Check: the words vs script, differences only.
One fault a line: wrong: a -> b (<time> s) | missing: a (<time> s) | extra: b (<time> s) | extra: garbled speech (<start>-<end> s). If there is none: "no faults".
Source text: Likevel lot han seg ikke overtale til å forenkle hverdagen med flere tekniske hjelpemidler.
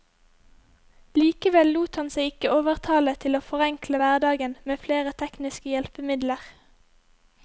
no faults